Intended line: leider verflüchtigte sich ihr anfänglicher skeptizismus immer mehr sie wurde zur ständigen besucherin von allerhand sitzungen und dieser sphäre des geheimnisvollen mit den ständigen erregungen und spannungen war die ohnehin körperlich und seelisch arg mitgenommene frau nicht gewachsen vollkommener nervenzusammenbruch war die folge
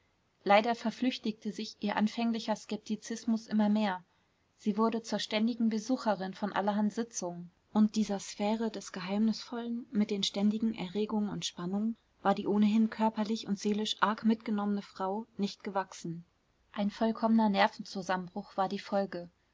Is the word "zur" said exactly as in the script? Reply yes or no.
yes